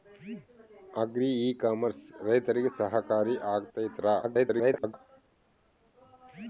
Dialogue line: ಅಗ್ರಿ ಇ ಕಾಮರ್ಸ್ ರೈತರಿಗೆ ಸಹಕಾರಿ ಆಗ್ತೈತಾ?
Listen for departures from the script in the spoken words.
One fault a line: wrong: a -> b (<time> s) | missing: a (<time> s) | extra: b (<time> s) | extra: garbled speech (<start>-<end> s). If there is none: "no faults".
extra: garbled speech (4.2-4.9 s)